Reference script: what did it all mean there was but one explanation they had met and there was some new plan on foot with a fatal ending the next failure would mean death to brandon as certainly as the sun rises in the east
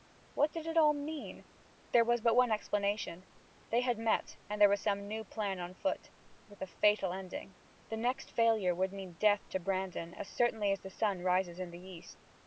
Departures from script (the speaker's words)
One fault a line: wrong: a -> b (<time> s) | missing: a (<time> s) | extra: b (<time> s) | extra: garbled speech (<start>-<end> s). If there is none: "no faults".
no faults